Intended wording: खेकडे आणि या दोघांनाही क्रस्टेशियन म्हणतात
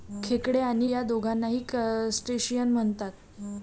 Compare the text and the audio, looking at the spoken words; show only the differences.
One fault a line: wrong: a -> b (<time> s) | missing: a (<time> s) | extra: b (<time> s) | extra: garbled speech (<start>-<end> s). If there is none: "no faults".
no faults